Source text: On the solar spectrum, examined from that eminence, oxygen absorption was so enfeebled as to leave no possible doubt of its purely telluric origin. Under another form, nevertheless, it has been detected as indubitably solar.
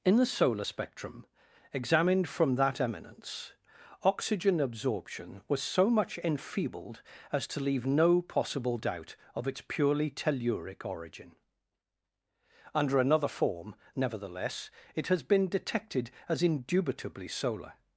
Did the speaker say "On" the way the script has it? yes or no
no